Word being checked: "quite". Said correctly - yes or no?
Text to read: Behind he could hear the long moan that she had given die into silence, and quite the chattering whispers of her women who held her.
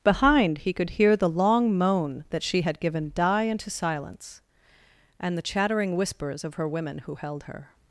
no